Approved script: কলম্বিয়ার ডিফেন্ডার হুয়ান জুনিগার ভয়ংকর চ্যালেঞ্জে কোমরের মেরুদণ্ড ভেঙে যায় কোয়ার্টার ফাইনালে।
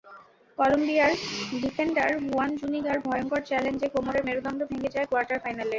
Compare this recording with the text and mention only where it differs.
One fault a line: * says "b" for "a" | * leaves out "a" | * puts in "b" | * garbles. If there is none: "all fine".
all fine